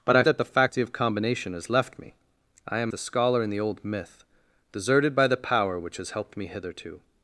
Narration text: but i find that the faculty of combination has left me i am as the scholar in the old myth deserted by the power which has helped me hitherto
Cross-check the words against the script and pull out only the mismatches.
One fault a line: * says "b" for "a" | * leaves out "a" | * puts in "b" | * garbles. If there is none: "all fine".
* leaves out "find"
* leaves out "as"